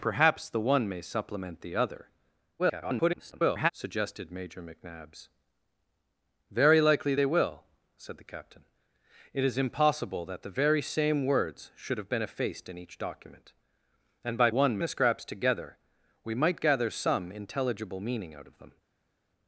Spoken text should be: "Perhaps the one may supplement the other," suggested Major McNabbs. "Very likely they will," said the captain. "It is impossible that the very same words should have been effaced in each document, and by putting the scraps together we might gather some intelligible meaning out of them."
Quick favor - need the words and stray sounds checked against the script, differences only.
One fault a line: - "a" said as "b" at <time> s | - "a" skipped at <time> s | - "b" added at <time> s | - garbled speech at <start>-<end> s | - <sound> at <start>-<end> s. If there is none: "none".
- garbled speech at 2.6-3.7 s
- "putting" said as "one" at 14.5 s